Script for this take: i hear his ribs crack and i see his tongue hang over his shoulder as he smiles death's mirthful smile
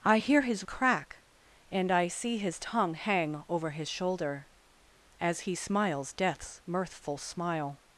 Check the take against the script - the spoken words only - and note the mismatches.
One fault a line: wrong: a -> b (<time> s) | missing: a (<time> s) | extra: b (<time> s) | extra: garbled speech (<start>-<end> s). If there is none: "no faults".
missing: ribs (0.6 s)